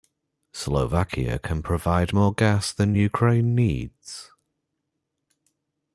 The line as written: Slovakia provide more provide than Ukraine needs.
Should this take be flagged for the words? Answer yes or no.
yes